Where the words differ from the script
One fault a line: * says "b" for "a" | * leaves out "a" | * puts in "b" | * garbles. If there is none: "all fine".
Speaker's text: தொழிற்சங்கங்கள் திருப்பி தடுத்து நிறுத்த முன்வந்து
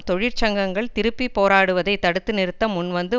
* puts in "போராடுவதை"